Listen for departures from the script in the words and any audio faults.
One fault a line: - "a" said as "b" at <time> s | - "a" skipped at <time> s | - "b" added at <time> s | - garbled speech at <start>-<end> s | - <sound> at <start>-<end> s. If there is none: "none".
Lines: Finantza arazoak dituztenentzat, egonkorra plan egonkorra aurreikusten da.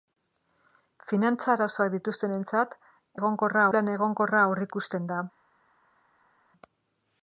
none